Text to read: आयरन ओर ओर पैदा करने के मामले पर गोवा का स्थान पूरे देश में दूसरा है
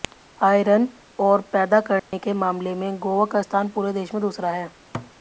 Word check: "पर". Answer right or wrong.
wrong